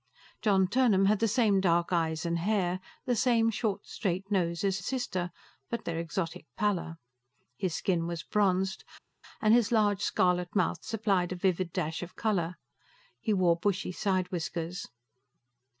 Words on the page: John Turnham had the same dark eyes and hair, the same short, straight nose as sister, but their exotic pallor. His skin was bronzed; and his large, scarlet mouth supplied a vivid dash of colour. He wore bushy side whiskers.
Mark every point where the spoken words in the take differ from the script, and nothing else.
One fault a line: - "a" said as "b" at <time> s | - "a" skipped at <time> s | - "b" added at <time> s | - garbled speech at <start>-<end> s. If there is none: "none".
none